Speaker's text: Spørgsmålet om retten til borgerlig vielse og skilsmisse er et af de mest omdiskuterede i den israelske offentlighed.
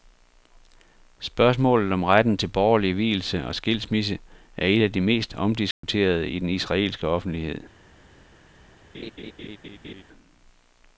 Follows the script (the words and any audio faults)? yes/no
no